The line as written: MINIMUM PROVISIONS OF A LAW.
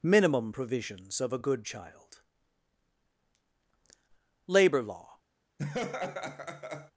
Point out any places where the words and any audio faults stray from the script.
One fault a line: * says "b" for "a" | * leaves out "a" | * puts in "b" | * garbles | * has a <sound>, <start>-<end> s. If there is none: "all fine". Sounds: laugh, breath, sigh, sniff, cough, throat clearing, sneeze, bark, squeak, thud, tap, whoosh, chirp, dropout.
* puts in "GOOD CHILD LABOR"
* has a laugh, 5.6-6.9 s